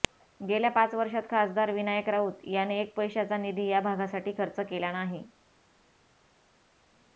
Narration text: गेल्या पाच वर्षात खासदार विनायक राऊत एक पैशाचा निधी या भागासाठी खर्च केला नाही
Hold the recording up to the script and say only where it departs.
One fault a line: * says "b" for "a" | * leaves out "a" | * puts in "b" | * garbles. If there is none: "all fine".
* puts in "याने"